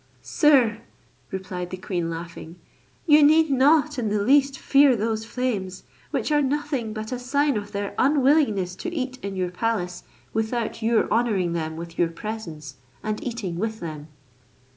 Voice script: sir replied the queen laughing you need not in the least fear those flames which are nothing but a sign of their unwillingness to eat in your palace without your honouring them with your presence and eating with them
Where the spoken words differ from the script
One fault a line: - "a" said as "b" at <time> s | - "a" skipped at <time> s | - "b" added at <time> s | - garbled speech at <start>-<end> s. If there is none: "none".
none